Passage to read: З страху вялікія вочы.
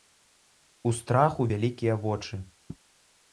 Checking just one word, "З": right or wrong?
wrong